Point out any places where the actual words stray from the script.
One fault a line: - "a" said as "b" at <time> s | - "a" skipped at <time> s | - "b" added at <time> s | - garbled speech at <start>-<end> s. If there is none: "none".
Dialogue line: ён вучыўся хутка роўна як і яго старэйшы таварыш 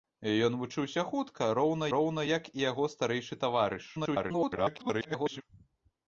- "роўна" added at 1.9 s
- garbled speech at 3.9-5.4 s